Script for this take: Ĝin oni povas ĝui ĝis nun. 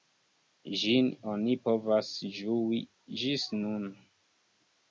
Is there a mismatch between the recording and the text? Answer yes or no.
no